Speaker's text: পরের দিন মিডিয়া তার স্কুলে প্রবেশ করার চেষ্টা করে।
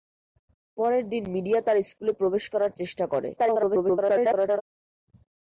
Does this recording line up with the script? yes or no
no